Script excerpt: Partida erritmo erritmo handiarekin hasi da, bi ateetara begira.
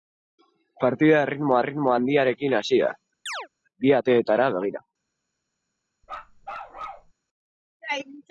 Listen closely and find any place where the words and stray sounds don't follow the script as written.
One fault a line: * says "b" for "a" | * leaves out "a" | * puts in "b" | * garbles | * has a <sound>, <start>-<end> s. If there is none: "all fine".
* has a chirp, 3.3-3.5 s
* has a bark, 6.0-7.1 s